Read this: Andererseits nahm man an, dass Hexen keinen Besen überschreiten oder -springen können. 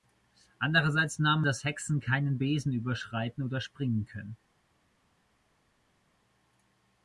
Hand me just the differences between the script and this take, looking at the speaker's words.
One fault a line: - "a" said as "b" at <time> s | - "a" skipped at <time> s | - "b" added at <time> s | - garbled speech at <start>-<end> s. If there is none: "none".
- "man an" skipped at 1.4 s